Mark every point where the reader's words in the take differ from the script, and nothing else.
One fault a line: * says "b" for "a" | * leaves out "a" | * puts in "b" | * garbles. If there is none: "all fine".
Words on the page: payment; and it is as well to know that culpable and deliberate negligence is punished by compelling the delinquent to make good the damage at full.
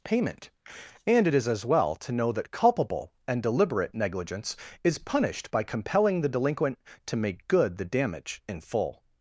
* says "in" for "at"